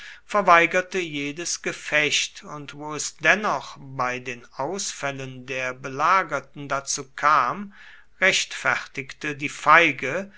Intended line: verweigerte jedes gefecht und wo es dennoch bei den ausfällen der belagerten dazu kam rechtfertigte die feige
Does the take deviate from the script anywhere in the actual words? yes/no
no